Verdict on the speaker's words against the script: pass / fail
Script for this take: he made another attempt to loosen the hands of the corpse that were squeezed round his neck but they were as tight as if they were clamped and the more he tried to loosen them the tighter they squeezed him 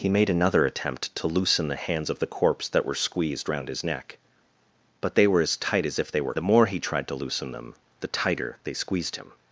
fail